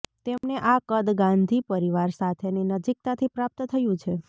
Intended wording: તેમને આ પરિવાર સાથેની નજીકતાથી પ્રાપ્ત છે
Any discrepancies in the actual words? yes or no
yes